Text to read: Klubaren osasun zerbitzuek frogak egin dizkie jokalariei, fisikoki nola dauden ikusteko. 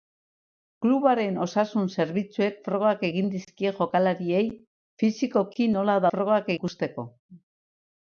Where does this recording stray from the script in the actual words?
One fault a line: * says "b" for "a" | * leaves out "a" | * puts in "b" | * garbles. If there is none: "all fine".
* says "frogak" for "dauden"